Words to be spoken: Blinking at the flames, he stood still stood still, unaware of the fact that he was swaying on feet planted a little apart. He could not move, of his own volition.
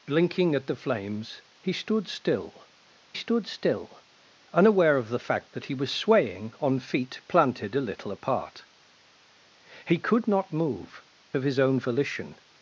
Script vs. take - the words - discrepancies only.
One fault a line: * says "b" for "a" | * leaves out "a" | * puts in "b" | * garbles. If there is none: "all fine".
all fine